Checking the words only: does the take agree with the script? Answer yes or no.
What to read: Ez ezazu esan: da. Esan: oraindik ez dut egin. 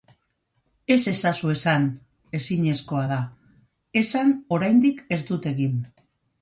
no